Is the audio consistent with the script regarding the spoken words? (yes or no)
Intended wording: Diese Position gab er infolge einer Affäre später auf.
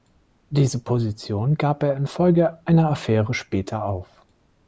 yes